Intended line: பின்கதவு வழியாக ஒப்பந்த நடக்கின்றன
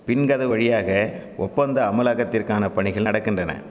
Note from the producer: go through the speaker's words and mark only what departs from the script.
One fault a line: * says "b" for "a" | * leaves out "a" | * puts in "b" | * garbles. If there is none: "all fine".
* puts in "அமலாக்கத்திற்கான பணிகள்"